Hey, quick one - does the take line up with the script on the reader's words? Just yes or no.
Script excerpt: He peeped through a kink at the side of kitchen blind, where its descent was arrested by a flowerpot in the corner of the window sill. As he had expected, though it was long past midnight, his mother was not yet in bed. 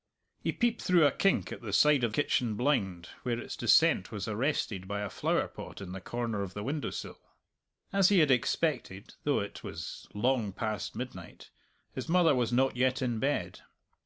yes